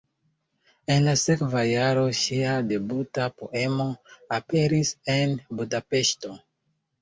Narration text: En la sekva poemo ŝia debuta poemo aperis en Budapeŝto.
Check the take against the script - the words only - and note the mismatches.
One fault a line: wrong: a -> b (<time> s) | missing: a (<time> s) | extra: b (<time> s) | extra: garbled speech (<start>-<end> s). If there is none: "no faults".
wrong: poemo -> jaro (1.7 s)